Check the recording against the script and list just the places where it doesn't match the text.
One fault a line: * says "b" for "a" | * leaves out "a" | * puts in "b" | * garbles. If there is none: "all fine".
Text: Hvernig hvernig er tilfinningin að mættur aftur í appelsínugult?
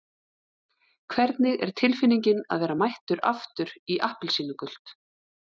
* leaves out "hvernig"
* puts in "vera"